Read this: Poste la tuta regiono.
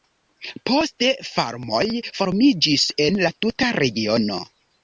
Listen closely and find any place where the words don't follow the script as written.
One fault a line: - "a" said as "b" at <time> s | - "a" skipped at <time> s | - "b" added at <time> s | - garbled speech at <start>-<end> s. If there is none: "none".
- "farmoj formiĝis en" added at 1.3 s